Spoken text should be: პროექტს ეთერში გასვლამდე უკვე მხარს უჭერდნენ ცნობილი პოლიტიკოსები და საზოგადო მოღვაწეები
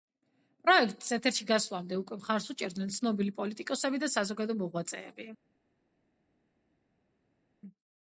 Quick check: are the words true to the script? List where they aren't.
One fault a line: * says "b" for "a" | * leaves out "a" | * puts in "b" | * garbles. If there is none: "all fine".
all fine